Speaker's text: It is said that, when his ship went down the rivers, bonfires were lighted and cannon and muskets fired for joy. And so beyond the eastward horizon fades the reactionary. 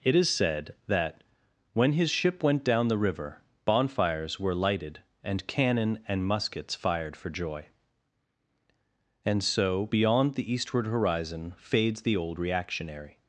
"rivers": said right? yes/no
no